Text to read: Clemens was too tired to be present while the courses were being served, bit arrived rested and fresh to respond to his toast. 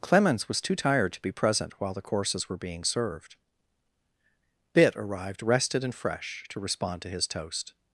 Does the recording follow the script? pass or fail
pass